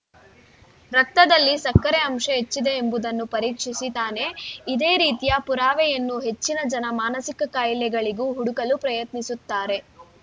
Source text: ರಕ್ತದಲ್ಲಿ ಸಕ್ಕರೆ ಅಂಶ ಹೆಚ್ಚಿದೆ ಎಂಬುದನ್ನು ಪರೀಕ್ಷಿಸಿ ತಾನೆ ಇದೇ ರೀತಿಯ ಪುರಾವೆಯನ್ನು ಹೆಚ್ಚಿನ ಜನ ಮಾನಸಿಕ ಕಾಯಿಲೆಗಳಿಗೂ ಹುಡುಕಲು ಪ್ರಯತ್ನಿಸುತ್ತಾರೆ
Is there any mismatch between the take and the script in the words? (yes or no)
no